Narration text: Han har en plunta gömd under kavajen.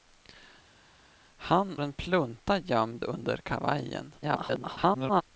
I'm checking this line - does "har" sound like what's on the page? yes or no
no